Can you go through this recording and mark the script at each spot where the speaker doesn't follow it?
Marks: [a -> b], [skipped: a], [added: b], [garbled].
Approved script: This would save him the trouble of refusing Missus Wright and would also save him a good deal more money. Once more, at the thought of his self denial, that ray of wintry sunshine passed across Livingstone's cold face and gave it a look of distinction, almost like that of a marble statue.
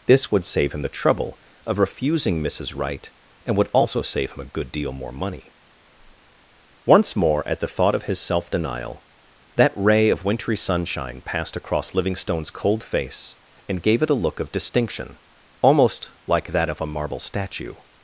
This would save him the trouble of refusing Missus Wright and would also save him a good deal more money. Once more, at the thought of his self denial, that ray of wintry sunshine passed across Livingstone's cold face and gave it a look of distinction, almost like that of a marble statue.